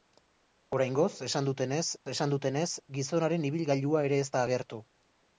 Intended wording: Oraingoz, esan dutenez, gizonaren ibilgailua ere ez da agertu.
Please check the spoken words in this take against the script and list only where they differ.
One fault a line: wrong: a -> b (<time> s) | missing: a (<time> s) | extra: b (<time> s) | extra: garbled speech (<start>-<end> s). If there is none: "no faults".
extra: esan dutenez (2.1 s)